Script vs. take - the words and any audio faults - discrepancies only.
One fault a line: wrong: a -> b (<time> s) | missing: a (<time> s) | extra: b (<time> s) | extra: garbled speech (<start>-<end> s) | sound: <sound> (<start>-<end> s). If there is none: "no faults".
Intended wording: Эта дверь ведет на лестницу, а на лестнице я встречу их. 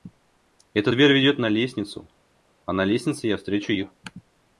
no faults